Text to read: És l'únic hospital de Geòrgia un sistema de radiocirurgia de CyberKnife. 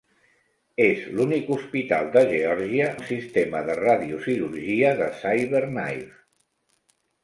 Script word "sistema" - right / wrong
right